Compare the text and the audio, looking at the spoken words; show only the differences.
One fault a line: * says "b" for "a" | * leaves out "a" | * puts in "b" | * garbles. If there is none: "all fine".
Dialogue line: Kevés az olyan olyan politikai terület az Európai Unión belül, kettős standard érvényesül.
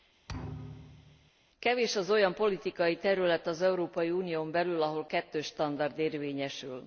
* leaves out "olyan"
* puts in "ahol"